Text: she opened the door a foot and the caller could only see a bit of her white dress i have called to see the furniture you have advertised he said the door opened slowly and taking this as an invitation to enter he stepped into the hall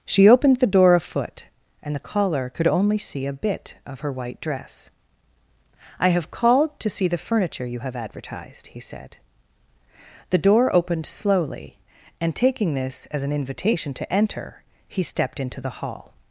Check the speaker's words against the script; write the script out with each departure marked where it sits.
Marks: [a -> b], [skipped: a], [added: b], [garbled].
she opened the door a foot and the caller could only see a bit of her white dress i have called to see the furniture you have advertised he said the door opened slowly and taking this as an invitation to enter he stepped into the hall